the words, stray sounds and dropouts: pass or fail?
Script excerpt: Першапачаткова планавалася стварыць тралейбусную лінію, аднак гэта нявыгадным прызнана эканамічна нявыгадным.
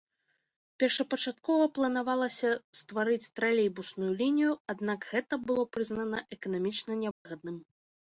fail